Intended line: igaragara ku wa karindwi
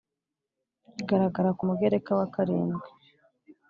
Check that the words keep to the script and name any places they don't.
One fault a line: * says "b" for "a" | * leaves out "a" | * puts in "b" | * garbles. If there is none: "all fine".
* puts in "mugereka"